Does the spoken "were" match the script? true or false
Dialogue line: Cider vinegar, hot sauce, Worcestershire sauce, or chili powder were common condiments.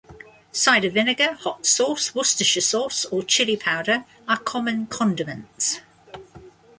false